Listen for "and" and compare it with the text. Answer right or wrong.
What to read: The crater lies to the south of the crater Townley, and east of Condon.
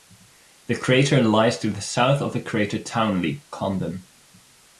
wrong